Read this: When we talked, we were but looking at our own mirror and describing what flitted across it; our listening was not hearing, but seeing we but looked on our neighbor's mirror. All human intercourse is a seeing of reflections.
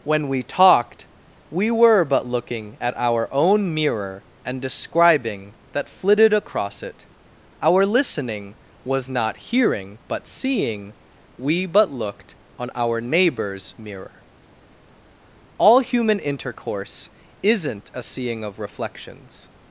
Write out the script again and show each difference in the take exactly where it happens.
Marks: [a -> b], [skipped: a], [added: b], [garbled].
When we talked, we were but looking at our own mirror and describing [what -> that] flitted across it; our listening was not hearing, but seeing we but looked on our neighbor's mirror. All human intercourse [is -> isn't] a seeing of reflections.